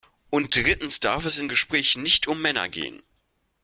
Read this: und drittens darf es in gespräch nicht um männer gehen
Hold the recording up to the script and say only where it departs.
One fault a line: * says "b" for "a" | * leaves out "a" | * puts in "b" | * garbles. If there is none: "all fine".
all fine